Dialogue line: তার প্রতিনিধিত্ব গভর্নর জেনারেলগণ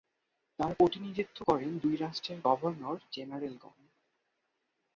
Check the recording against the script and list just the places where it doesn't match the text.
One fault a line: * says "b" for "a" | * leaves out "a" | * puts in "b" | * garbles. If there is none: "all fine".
* puts in "করেন দুই রাষ্ট্রের"